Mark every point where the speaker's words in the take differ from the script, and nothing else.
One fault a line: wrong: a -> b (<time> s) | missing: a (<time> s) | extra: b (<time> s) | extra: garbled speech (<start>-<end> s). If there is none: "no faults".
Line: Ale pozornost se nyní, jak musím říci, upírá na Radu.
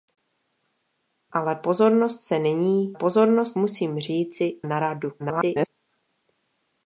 wrong: jak -> pozornost (2.9 s)
missing: upírá (4.6 s)
extra: garbled speech (5.2-5.7 s)